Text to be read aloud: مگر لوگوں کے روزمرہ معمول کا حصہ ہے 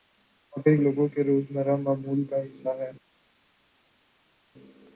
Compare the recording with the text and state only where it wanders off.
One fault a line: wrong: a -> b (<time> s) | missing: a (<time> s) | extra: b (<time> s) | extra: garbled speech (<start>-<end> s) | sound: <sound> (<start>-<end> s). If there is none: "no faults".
no faults